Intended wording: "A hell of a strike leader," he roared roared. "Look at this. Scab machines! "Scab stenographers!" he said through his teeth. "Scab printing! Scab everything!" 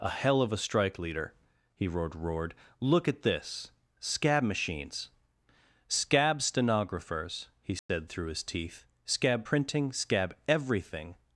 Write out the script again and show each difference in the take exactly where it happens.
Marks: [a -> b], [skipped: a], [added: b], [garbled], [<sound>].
"A hell of a strike leader," he roared roared. "Look at this. Scab machines! "Scab stenographers!" he said [dropout] through his teeth. "Scab printing! Scab everything!"